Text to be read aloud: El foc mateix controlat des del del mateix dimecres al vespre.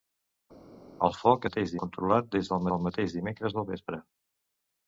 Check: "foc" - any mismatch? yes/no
no